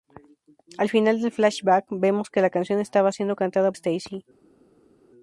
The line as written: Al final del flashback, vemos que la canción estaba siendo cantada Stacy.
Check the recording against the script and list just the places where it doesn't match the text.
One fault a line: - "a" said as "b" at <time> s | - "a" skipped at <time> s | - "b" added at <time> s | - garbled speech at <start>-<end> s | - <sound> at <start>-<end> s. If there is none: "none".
none